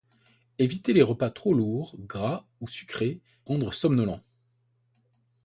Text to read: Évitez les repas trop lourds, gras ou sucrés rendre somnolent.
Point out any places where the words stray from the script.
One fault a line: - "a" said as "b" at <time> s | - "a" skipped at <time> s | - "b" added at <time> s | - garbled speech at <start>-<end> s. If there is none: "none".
none